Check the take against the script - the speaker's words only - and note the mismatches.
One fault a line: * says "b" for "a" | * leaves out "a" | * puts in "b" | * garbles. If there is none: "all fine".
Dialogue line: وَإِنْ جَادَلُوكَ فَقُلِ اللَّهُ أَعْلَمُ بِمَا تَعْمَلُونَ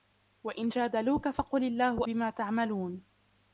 * leaves out "أَعْلَمُ"